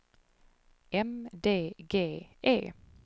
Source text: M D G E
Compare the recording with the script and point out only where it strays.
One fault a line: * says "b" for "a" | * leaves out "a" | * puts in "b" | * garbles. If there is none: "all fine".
all fine